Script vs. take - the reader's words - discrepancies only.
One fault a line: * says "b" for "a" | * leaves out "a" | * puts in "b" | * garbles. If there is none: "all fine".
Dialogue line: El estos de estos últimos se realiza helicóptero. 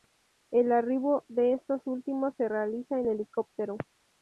* says "arribo" for "estos"
* puts in "en"